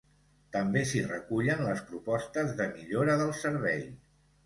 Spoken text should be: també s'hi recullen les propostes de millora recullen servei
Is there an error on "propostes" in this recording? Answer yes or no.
no